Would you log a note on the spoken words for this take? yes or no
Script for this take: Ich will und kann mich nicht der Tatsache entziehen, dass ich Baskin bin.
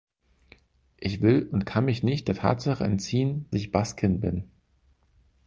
yes